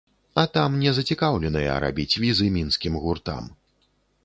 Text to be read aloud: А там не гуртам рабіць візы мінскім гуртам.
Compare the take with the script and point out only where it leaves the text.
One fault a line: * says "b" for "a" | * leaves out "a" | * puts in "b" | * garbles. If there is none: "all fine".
* says "зацікаўленыя" for "гуртам"